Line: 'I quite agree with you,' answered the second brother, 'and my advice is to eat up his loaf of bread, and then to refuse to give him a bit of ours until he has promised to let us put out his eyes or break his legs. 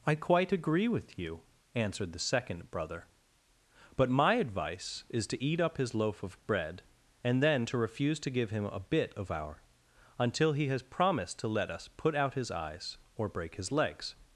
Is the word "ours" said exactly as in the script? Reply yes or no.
no